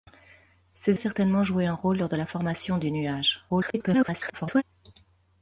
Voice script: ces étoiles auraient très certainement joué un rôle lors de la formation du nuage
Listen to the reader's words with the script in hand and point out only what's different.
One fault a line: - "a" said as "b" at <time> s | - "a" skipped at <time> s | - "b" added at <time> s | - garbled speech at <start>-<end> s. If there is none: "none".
- "étoiles auraient très" skipped at 1.0 s
- garbled speech at 3.5-4.6 s